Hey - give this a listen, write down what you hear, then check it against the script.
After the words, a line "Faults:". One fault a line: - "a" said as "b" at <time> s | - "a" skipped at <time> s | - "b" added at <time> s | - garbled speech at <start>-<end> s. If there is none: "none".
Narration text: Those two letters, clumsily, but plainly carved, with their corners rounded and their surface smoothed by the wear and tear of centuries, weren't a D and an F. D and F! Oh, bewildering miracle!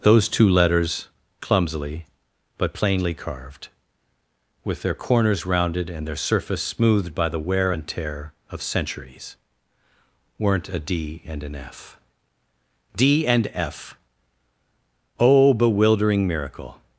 Those two letters, clumsily, but plainly carved, with their corners rounded and their surface smoothed by the wear and tear of centuries, weren't a D and an F. D and F! Oh, bewildering miracle!
Faults:
none